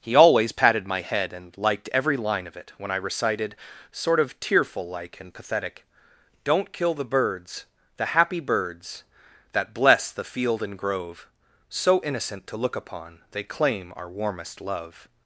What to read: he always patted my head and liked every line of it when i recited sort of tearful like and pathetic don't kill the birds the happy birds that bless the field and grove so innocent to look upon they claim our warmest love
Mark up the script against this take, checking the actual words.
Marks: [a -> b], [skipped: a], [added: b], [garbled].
he always patted my head and liked every line of it when i recited sort of tearful like and pathetic don't kill the birds the happy birds that bless the field and grove so innocent to look upon they claim our warmest love